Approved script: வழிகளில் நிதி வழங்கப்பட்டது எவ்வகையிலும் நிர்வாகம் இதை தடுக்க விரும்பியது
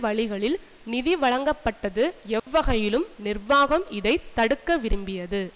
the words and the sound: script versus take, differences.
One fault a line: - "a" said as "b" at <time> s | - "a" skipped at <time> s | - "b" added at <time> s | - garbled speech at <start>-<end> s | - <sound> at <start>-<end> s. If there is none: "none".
- dropout at 2.4-2.5 s